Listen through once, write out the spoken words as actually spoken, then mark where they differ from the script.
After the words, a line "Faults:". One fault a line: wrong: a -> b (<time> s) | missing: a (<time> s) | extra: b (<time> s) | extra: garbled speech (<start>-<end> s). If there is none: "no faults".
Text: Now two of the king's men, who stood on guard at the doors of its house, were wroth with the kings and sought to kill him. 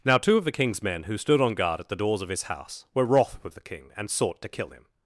Now two of the king's men, who stood on guard at the doors of his house, were wroth with the king and sought to kill him.
Faults:
wrong: its -> his (2.3 s)
wrong: kings -> king (3.6 s)